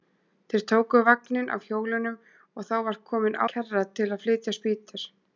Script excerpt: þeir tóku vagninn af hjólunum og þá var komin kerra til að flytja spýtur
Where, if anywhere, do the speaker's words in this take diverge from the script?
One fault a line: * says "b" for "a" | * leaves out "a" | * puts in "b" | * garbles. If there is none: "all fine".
all fine